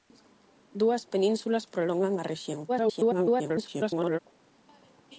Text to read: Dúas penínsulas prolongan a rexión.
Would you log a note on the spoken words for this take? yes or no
yes